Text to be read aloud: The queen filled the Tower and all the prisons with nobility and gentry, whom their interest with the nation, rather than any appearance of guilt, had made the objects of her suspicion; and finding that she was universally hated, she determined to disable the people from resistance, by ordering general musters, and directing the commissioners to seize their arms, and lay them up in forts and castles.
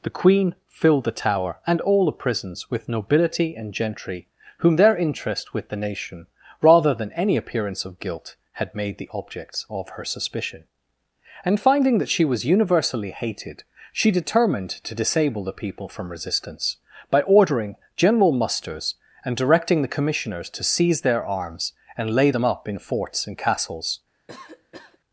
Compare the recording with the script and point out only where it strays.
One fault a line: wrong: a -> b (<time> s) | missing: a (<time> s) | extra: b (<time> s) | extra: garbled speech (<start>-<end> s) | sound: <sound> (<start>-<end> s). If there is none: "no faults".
sound: cough (24.3-25.0 s)